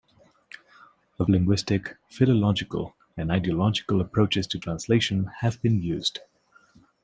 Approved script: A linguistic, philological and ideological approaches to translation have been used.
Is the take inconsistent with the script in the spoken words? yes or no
no